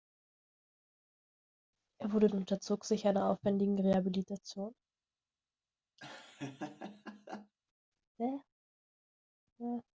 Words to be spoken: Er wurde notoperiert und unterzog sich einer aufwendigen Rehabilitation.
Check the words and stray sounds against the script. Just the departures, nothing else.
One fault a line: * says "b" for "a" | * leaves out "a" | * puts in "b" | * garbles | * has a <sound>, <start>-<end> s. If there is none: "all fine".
* leaves out "notoperiert"
* has a laugh, 6.0-7.5 s